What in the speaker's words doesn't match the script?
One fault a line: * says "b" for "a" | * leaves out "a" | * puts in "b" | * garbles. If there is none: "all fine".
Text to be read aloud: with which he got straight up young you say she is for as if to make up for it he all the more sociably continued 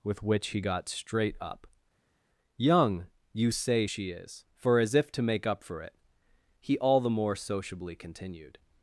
all fine